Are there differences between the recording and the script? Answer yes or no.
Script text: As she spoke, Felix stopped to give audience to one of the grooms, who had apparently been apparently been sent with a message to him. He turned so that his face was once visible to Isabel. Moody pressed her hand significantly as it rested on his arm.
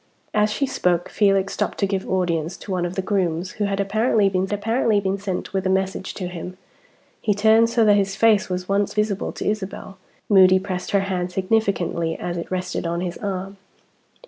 no